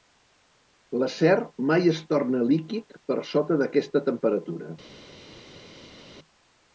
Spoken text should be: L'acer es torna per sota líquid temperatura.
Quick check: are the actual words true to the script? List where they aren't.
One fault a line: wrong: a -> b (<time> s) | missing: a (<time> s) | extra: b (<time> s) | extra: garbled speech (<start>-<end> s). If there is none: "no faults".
extra: mai (1.7 s)
extra: líquid (2.5 s)
wrong: líquid -> d'aquesta (3.6 s)